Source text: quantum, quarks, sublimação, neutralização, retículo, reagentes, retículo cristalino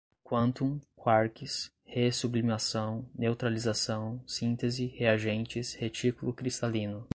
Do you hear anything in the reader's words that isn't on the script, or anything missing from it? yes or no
yes